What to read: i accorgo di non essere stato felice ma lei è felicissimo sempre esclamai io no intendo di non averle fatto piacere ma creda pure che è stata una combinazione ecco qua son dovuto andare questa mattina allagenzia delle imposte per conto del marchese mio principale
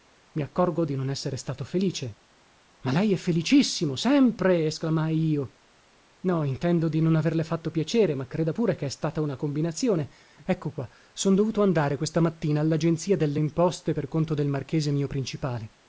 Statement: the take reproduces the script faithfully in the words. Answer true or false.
true